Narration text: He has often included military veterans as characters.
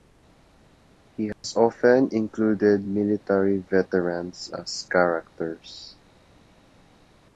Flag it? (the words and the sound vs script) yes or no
yes